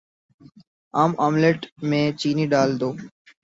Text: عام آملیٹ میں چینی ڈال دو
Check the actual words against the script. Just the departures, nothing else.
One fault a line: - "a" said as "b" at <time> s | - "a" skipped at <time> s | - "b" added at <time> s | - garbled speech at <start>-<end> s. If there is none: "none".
none